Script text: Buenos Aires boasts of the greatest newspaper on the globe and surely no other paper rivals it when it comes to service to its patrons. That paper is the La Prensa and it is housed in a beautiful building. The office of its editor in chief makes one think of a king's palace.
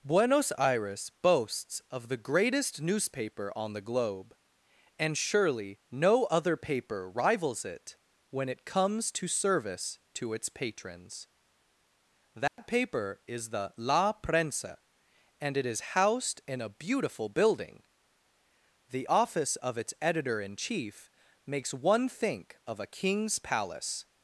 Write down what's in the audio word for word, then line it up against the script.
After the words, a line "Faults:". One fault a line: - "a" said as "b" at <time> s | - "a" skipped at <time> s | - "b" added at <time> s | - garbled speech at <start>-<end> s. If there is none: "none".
Buenos Aires boasts of the greatest newspaper on the globe and surely no other paper rivals it when it comes to service to its patrons. That paper is the La Prensa and it is housed in a beautiful building. The office of its editor in chief makes one think of a king's palace.
Faults:
none